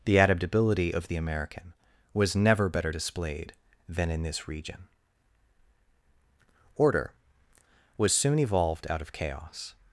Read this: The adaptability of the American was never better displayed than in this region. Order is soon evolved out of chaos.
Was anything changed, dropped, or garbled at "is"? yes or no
yes